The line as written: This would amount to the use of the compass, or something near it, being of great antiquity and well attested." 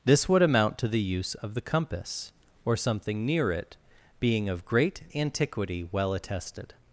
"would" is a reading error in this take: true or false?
false